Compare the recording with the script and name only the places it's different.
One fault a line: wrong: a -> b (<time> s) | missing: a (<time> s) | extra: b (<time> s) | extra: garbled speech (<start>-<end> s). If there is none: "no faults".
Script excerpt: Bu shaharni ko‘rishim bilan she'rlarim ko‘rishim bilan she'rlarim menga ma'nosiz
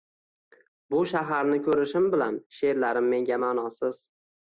missing: ko‘rishim bilan she'rlarim (3.1 s)